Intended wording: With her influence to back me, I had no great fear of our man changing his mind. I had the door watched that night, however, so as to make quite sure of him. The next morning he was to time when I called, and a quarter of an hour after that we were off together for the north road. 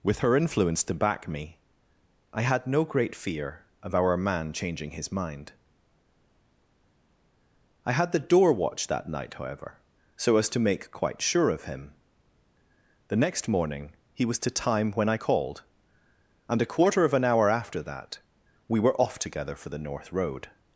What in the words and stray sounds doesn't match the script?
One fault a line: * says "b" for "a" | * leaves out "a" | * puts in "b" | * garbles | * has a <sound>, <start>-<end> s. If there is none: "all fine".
all fine